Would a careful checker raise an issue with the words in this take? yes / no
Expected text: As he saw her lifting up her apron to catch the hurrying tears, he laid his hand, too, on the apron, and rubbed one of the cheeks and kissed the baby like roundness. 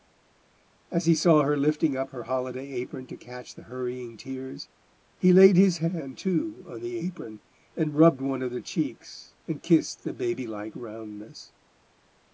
yes